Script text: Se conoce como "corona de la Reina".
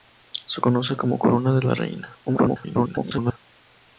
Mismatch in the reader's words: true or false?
true